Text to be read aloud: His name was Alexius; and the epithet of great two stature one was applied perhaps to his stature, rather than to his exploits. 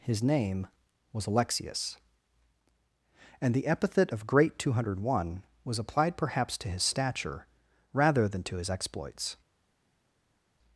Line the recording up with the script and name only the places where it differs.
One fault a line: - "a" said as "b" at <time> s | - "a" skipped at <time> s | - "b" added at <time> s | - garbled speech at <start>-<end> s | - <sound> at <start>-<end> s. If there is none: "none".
- "stature" said as "hundred" at 4.7 s